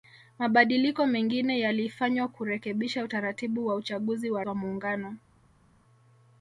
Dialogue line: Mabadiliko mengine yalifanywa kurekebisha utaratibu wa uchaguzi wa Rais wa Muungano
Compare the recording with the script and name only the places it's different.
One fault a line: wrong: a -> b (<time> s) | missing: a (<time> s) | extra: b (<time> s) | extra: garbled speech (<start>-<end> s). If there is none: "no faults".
missing: Rais (4.4 s)